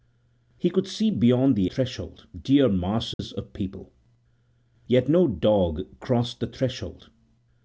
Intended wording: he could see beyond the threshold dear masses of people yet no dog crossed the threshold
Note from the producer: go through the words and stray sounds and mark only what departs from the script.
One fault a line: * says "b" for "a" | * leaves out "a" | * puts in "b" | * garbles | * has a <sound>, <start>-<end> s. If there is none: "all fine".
* has a dropout, 3.1-3.2 s